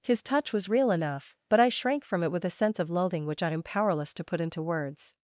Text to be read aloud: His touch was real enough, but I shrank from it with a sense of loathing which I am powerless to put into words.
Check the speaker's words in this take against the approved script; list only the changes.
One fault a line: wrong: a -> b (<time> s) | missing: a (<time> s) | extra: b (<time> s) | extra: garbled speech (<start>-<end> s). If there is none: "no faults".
no faults